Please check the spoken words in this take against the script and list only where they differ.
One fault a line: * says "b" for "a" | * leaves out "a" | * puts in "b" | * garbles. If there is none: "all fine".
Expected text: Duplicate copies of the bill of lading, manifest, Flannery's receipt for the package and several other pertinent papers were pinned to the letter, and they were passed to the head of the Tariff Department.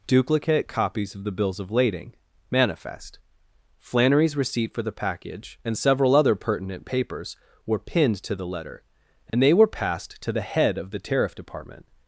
* says "bills" for "bill"